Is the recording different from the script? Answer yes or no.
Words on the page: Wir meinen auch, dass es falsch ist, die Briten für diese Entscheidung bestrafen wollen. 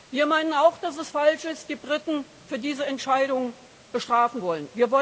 no